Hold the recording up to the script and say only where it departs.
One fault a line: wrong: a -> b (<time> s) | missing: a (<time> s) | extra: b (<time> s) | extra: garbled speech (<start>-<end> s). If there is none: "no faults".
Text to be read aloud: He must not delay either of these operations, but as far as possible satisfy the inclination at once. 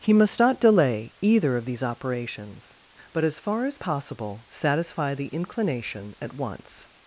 no faults